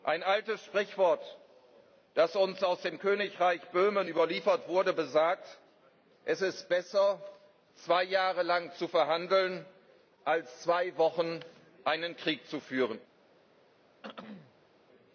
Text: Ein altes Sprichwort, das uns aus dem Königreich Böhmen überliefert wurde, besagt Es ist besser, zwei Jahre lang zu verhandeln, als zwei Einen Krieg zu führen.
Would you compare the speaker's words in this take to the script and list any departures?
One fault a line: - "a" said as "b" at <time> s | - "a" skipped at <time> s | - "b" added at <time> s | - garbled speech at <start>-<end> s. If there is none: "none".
- "Wochen" added at 11.0 s